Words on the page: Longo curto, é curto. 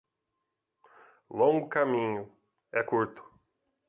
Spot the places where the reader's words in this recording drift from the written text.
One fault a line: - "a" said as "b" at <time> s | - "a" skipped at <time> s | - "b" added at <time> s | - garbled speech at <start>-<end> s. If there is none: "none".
- "curto" said as "caminho" at 1.7 s